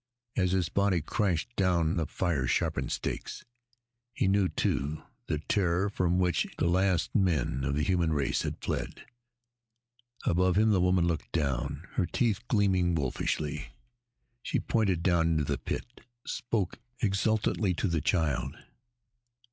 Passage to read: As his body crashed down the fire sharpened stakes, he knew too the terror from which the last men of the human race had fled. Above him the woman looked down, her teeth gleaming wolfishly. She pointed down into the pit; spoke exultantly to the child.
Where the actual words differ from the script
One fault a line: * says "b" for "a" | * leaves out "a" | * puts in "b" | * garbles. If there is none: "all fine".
all fine